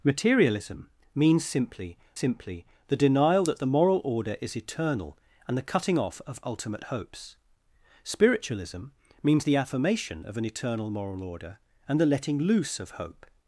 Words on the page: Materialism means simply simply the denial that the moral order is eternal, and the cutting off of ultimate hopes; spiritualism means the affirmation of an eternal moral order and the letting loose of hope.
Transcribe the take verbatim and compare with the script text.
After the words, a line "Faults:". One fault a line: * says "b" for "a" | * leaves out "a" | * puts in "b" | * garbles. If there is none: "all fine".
Materialism means simply simply the denial that the moral order is eternal, and the cutting off of ultimate hopes; spiritualism means the affirmation of an eternal moral order and the letting loose of hope.
Faults:
all fine